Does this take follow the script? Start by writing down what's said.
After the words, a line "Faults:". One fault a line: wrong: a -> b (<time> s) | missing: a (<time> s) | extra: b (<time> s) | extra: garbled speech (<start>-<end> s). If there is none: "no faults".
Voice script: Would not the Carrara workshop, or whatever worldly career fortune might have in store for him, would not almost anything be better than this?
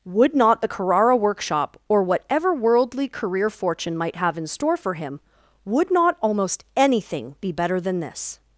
Would not the Carrara workshop, or whatever worldly career fortune might have in store for him, would not almost anything be better than this?
Faults:
no faults